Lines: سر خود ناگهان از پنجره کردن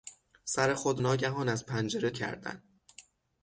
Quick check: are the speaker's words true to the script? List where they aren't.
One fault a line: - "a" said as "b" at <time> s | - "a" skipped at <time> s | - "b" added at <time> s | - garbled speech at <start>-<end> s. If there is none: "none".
none